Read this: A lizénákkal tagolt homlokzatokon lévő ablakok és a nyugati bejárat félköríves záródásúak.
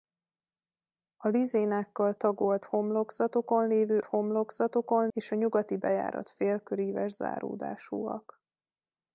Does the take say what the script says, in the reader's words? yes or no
no